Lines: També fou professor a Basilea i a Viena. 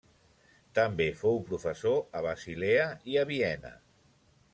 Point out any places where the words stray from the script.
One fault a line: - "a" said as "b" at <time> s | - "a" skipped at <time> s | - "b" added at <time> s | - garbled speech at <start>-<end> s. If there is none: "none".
none